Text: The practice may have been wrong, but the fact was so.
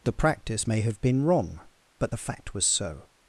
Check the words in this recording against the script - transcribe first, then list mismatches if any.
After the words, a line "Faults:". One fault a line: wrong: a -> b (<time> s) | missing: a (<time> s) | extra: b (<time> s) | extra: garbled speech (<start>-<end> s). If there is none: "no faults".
The practice may have been wrong, but the fact was so.
Faults:
no faults